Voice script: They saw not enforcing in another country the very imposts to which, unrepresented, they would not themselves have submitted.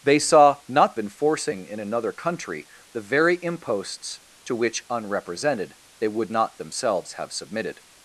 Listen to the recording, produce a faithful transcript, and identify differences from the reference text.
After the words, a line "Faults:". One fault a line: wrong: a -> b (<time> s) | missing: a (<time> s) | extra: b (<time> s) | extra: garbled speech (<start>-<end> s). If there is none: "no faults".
They saw not enforcing in another country the very imposts to which, unrepresented, they would not themselves have submitted.
Faults:
no faults